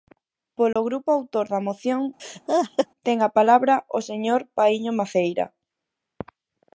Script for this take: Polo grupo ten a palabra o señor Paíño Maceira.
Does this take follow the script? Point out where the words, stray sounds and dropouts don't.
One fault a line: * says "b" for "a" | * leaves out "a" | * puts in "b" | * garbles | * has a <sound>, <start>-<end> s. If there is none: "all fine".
* has a dropout, 0.7-0.8 s
* puts in "autor da moción"
* has a laugh, 2.2-2.9 s